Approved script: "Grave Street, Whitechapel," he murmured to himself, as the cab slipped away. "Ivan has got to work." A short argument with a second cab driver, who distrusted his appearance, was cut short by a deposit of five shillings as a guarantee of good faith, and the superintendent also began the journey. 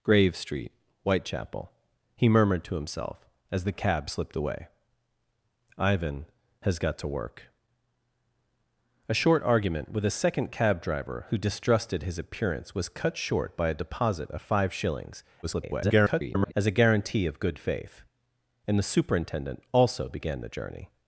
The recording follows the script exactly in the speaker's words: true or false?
false